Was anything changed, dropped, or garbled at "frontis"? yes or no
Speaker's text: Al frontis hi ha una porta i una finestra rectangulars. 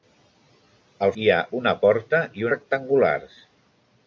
yes